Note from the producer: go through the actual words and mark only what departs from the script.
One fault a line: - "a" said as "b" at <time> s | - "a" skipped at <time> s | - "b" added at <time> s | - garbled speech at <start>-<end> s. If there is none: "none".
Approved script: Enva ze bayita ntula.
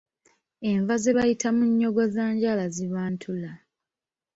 - "munnyogozanjala ziba" added at 1.6 s